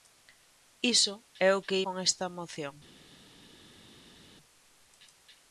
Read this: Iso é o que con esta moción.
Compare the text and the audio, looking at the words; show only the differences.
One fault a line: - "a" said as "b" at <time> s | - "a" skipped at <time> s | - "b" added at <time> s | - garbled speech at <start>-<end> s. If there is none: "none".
none